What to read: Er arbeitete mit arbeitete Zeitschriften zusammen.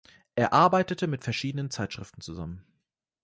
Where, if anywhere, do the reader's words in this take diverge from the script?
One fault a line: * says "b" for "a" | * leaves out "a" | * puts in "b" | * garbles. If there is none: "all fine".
* says "verschiedenen" for "arbeitete"